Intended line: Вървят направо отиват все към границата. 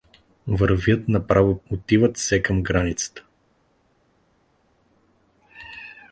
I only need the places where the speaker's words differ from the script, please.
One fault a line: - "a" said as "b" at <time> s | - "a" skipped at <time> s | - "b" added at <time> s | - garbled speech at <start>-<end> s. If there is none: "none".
none